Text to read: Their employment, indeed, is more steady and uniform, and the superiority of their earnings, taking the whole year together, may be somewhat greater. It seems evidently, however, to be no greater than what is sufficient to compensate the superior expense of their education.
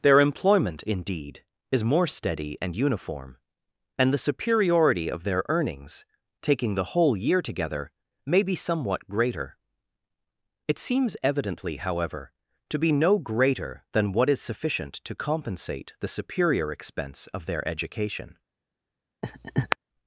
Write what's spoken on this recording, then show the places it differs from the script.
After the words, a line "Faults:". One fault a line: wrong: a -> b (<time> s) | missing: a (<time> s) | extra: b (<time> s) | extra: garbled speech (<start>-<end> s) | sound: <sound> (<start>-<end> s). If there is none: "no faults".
Their employment, indeed, is more steady and uniform, and the superiority of their earnings, taking the whole year together, may be somewhat greater. It seems evidently, however, to be no greater than what is sufficient to compensate the superior expense of their education.
Faults:
sound: laugh (19.2-19.8 s)